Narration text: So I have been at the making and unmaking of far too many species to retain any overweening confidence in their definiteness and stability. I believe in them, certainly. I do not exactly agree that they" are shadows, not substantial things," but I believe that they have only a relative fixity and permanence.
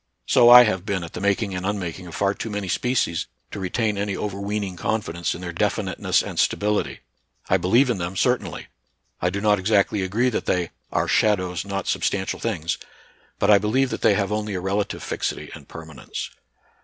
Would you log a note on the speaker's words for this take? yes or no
no